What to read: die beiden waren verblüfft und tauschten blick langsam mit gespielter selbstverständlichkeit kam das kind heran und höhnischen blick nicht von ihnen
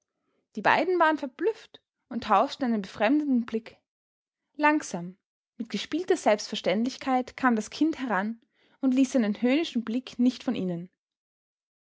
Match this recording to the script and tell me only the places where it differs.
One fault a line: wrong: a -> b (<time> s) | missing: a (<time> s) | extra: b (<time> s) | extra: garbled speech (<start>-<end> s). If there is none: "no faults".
extra: einen befremdeten (2.7 s)
extra: ließ seinen (8.9 s)